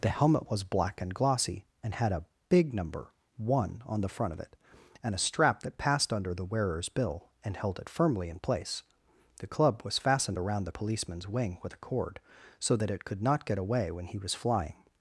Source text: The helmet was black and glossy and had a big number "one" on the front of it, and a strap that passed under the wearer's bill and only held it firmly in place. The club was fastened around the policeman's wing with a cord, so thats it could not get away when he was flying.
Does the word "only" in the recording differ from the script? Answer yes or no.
yes